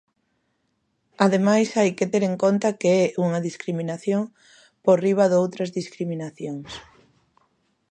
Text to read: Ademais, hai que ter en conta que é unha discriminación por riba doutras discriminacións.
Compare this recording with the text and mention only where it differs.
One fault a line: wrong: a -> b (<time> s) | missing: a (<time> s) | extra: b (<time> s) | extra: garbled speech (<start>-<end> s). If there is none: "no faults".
no faults